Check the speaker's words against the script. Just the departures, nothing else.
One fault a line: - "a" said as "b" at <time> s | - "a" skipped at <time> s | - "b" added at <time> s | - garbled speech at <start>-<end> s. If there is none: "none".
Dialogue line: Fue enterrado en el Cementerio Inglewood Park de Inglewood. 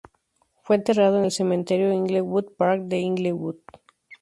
none